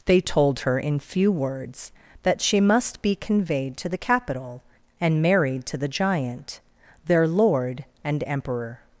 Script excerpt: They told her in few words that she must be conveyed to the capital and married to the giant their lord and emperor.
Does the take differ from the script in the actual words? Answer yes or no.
no